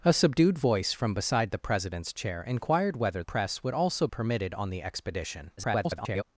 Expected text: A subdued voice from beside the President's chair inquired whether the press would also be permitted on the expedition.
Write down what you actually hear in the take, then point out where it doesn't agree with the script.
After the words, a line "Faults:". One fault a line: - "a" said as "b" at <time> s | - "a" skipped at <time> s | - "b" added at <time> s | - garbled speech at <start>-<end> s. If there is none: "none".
A subdued voice from beside the President's chair inquired whether press would also permitted on the expedition. [garbled]
Faults:
- "the" skipped at 3.2 s
- "be" skipped at 4.1 s
- garbled speech at 5.6-6.2 s